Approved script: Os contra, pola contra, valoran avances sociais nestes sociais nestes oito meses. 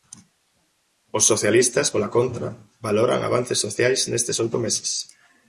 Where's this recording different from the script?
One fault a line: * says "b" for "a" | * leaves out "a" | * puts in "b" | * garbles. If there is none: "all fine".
* says "socialistas" for "contra"
* leaves out "sociais nestes"